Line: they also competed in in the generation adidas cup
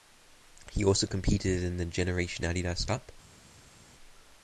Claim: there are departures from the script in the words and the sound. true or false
true